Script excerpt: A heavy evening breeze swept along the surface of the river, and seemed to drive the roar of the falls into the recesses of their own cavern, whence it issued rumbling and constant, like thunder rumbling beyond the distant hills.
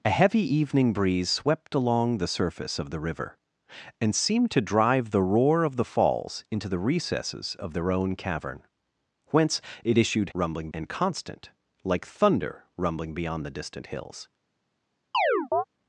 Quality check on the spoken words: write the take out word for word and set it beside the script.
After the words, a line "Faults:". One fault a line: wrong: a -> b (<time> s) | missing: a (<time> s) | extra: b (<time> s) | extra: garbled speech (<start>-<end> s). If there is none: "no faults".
A heavy evening breeze swept along the surface of the river, and seemed to drive the roar of the falls into the recesses of their own cavern, whence it issued rumbling and constant, like thunder rumbling beyond the distant hills.
Faults:
no faults